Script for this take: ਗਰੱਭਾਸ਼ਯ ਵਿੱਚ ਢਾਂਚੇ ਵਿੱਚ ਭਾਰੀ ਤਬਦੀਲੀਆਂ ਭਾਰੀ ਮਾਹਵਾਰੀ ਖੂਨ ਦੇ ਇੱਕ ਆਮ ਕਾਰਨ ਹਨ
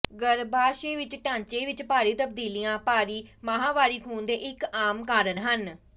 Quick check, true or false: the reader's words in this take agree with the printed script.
true